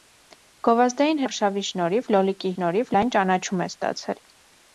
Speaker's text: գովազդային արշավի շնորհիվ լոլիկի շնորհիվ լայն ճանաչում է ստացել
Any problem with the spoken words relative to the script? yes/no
no